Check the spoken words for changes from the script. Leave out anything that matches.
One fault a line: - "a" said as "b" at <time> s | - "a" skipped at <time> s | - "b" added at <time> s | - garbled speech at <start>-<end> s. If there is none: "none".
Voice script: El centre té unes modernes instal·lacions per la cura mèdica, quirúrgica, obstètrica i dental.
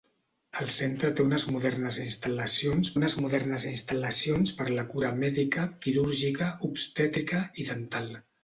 - "unes modernes instal·lacions" added at 3.0 s